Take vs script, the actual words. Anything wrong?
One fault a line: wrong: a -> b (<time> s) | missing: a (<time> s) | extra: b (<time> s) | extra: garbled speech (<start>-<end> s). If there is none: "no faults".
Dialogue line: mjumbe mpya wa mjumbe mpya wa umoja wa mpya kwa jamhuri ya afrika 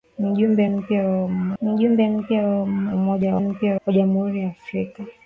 no faults